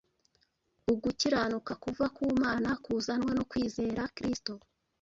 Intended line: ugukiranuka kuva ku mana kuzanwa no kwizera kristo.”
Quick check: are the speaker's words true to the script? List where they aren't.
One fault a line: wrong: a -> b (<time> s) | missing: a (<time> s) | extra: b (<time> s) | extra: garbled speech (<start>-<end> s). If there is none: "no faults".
no faults